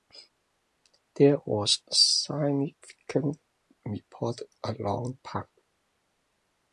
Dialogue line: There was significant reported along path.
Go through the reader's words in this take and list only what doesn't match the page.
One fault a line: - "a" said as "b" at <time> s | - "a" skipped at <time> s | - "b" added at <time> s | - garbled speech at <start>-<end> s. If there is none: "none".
none